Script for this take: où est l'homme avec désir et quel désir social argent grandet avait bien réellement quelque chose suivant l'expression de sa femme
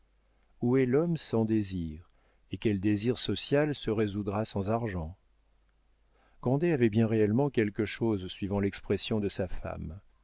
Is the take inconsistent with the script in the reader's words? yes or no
yes